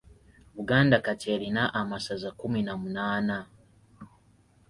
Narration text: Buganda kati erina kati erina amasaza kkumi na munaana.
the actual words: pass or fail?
fail